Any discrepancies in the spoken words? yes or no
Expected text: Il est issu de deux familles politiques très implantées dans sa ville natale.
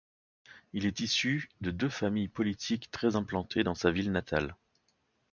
no